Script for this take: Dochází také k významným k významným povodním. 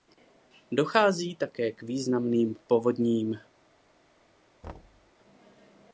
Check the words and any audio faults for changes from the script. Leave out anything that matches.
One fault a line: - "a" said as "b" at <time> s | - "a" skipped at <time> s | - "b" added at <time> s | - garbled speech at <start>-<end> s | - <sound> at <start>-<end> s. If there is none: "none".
- "k významným" skipped at 2.5 s
- thud at 4.6-5.1 s